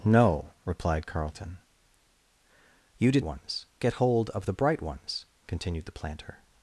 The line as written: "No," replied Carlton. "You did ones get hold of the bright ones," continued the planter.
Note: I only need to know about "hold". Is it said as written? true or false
true